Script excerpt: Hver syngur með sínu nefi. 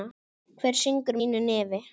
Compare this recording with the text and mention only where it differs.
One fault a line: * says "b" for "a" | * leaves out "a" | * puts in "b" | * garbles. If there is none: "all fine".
* leaves out "með"